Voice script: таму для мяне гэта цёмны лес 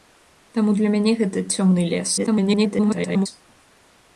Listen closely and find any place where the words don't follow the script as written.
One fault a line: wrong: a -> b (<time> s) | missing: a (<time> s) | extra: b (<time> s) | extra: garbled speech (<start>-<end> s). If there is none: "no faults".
extra: garbled speech (2.2-3.3 s)